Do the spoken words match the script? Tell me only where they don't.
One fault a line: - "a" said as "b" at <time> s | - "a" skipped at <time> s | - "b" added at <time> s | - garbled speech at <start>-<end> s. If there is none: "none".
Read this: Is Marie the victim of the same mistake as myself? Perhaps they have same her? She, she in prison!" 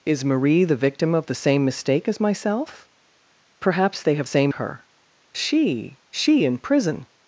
none